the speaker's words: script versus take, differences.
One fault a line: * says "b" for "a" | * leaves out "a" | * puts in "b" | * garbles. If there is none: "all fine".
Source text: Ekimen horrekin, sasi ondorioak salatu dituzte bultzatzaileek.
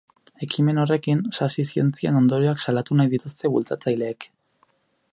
* puts in "zientzien"
* puts in "nahi"